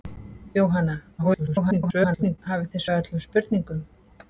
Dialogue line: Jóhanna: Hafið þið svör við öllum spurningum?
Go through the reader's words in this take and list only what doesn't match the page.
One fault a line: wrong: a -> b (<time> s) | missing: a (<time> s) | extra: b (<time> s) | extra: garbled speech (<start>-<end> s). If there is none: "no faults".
extra: garbled speech (1.2-2.4 s)
missing: svör (2.8 s)